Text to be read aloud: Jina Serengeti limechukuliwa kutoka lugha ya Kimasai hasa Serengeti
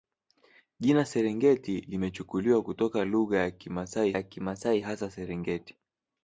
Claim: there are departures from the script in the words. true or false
true